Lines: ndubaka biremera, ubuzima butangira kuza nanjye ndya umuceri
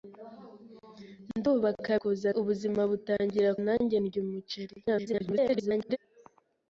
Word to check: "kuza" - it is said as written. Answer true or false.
false